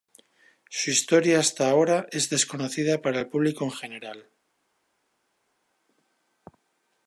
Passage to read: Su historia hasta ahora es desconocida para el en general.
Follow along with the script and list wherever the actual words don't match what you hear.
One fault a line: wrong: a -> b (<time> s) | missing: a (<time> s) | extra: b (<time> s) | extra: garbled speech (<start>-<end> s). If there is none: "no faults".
extra: público (3.3 s)